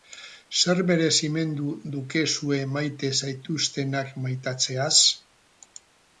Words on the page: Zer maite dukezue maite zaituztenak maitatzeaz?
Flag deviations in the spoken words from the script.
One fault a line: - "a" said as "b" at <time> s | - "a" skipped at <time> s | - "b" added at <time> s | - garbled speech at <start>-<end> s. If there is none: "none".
- "maite" said as "merezimendu" at 0.9 s